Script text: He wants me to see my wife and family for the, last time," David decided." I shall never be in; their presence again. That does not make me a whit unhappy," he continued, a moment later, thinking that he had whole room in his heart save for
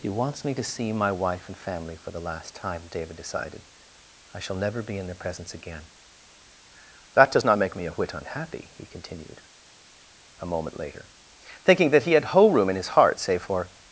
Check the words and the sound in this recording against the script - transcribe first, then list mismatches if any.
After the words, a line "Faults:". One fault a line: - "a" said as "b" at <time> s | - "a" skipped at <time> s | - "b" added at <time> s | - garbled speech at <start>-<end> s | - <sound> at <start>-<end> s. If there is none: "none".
He wants me to see my wife and family for the, last time," David decided." I shall never be in; their presence again. That does not make me a whit unhappy," he continued, a moment later, thinking that he had whole room in his heart save for
Faults:
none